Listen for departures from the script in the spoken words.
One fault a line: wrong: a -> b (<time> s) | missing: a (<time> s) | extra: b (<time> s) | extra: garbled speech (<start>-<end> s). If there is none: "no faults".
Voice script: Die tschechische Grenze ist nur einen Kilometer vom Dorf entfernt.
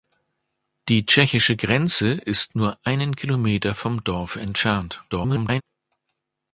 extra: garbled speech (5.1-5.6 s)